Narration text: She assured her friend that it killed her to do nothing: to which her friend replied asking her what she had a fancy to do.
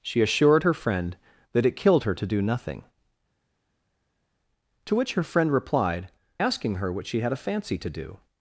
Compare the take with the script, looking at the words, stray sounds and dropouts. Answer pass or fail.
pass